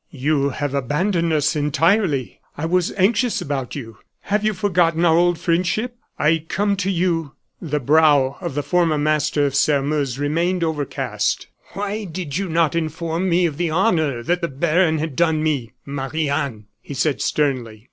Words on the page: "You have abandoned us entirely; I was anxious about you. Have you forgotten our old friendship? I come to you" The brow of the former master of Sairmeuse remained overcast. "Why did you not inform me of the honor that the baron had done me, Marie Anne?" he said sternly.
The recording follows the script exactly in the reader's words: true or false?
true